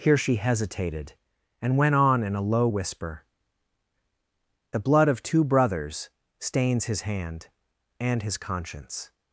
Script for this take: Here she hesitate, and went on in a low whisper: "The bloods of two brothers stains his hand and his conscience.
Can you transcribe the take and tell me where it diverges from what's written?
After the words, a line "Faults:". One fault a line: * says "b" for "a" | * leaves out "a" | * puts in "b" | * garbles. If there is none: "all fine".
Here she hesitated, and went on in a low whisper: "The blood of two brothers stains his hand and his conscience.
Faults:
* says "hesitated" for "hesitate"
* says "blood" for "bloods"